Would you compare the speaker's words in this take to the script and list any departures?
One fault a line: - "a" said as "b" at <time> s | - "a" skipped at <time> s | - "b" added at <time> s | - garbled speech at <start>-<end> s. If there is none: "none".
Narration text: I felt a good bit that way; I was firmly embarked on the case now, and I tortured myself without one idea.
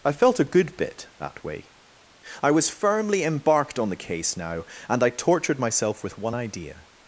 - "without" said as "with" at 6.0 s